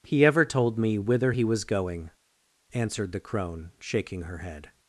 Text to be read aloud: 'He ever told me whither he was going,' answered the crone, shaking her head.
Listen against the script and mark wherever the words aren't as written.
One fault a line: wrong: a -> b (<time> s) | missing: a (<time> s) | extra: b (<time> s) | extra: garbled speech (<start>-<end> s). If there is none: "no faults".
no faults